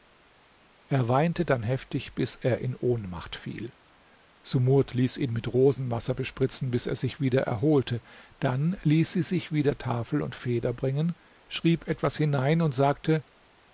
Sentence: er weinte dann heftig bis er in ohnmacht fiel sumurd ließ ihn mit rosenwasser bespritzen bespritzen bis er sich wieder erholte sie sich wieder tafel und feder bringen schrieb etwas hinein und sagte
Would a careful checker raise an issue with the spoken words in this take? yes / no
yes